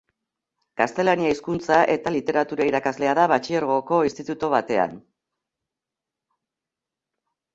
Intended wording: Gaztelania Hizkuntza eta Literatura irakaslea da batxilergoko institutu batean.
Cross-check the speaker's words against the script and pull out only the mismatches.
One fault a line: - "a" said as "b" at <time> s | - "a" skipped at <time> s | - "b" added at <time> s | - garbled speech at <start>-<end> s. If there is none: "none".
none